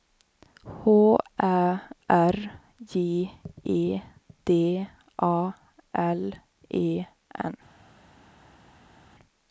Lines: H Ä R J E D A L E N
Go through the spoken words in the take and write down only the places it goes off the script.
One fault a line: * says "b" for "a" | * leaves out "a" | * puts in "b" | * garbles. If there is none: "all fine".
all fine